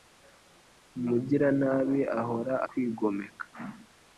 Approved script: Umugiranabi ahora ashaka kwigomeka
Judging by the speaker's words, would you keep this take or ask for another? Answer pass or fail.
fail